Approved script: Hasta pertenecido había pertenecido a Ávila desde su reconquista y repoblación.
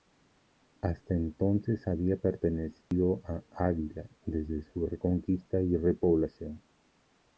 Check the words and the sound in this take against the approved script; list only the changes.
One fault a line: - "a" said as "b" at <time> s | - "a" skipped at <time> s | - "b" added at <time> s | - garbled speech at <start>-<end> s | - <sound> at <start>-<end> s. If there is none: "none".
- "pertenecido" said as "entonces" at 1.1 s
- dropout at 2.8-2.9 s